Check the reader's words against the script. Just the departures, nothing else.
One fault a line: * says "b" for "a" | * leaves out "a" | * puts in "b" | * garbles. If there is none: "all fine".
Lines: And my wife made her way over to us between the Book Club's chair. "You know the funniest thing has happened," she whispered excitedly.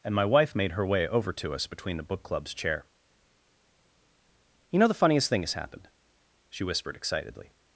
all fine